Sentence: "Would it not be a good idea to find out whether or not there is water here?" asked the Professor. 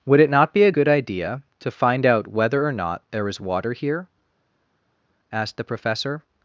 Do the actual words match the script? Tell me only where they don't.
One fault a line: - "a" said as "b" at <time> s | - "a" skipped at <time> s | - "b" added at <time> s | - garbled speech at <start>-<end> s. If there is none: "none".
none